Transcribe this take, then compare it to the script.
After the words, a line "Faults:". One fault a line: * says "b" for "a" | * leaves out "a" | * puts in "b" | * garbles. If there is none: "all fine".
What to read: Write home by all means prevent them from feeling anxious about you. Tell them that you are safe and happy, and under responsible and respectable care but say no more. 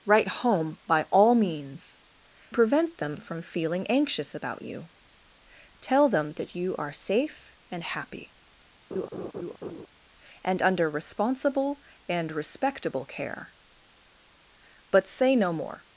Write home by all means prevent them from feeling anxious about you. Tell them that you are safe and happy, and under responsible and respectable care but say no more.
Faults:
all fine